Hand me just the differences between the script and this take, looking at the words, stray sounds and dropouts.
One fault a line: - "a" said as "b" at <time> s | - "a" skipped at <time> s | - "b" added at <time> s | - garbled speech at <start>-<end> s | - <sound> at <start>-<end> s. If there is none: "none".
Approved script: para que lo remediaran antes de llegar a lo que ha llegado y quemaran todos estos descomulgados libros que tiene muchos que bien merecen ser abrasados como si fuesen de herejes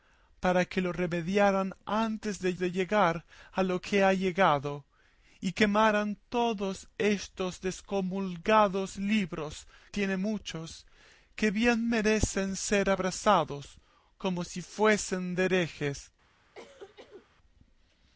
- "de" added at 2.6 s
- "que" skipped at 9.7 s
- cough at 16.6-17.3 s